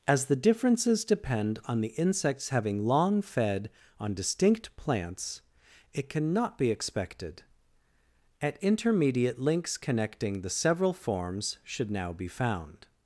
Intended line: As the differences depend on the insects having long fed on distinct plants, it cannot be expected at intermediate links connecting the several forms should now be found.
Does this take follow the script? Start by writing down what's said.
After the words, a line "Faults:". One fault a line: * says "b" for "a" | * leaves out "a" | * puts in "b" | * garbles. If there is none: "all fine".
As the differences depend on the insects having long fed on distinct plants, it cannot be expected at intermediate links connecting the several forms should now be found.
Faults:
all fine